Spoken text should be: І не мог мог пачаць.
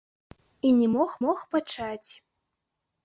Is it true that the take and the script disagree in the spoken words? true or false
false